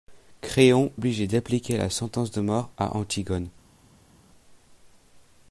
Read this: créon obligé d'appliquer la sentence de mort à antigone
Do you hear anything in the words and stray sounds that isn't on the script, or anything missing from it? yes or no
no